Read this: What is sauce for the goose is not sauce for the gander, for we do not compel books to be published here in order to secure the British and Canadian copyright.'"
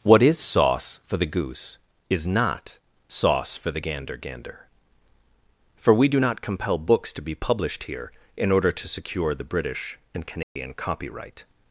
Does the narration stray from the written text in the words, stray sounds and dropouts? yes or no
yes